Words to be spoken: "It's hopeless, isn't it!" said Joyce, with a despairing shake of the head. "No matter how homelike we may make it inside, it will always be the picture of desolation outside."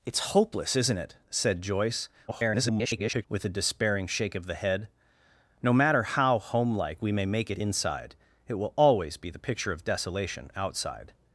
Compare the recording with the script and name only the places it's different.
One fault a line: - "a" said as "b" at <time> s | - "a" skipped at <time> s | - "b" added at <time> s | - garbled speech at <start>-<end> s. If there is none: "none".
- garbled speech at 2.3-3.3 s